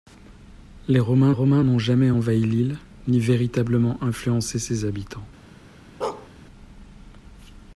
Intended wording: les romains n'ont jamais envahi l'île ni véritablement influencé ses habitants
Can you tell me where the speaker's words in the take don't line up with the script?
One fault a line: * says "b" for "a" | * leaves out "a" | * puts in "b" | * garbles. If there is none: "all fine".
* puts in "romains"